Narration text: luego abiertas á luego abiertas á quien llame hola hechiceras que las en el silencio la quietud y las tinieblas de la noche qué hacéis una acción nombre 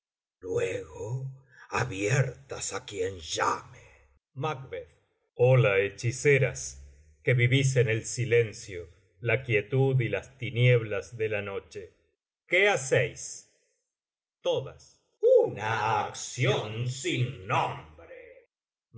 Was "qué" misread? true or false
false